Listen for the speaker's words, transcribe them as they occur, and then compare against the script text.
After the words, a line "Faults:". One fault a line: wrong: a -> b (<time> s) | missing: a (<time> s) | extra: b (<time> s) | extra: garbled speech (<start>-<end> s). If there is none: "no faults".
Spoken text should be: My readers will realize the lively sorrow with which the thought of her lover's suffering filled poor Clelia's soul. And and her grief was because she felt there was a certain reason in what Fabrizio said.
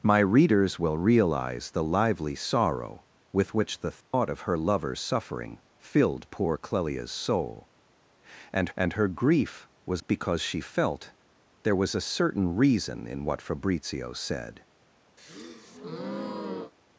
My readers will realize the lively sorrow with which the thought of her lover's suffering filled poor Clelia's soul. And and her grief was because she felt there was a certain reason in what Fabrizio said.
Faults:
no faults